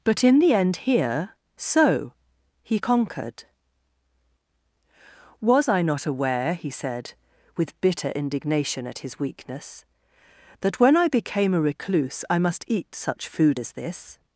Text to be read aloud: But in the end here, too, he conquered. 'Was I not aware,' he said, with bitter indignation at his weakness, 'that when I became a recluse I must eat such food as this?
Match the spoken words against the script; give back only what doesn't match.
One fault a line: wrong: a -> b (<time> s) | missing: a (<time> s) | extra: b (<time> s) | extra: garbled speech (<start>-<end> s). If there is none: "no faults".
wrong: too -> so (1.6 s)